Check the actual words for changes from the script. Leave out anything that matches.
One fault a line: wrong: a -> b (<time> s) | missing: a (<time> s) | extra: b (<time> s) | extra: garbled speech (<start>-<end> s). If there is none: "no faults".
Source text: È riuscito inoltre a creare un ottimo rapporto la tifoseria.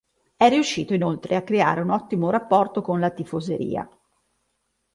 extra: con (2.8 s)